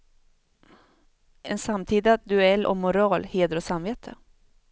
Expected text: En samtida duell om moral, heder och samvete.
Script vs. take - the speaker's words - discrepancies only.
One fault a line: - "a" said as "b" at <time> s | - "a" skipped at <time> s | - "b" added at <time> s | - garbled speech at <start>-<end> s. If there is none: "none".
none